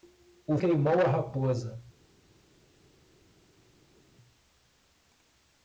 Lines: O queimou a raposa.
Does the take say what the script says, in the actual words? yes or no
yes